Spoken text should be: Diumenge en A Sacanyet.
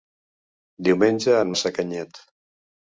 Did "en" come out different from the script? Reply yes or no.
no